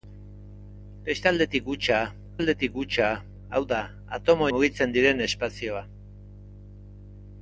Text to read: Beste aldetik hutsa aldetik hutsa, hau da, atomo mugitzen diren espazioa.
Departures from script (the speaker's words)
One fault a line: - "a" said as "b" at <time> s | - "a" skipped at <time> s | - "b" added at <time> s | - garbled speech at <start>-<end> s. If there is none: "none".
none